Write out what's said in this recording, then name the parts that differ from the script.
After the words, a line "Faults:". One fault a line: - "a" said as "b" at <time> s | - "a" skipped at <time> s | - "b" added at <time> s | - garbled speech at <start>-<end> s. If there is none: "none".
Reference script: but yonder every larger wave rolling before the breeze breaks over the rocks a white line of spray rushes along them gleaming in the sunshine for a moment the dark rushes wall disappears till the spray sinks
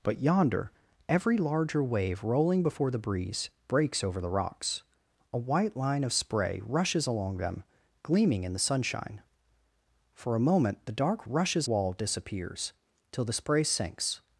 but yonder every larger wave rolling before the breeze breaks over the rocks a white line of spray rushes along them gleaming in the sunshine for a moment the dark rushes wall disappears till the spray sinks
Faults:
none